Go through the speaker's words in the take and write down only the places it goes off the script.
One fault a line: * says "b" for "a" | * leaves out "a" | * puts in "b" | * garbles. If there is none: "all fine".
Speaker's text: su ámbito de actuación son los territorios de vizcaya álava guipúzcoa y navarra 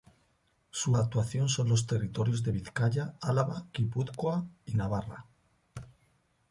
* leaves out "ámbito"